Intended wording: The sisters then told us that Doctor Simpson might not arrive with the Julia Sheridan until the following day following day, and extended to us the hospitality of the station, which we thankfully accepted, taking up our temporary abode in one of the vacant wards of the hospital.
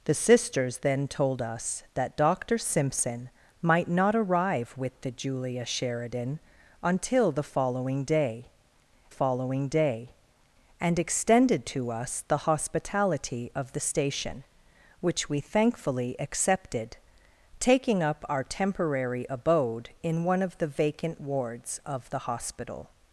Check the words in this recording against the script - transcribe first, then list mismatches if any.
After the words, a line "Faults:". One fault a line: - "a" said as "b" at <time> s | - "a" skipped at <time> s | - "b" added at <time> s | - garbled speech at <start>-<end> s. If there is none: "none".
The sisters then told us that Doctor Simpson might not arrive with the Julia Sheridan until the following day following day, and extended to us the hospitality of the station, which we thankfully accepted, taking up our temporary abode in one of the vacant wards of the hospital.
Faults:
none